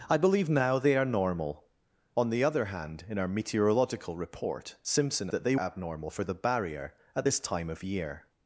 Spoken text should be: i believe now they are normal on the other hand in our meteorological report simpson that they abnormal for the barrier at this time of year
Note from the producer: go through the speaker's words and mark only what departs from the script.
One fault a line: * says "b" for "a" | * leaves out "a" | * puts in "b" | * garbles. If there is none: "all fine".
all fine